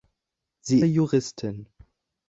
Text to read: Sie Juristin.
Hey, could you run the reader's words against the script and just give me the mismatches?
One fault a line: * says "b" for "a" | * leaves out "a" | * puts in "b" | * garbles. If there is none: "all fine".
all fine